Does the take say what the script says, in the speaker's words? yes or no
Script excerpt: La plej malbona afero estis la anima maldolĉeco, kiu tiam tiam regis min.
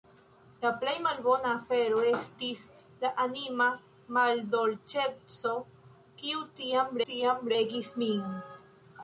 yes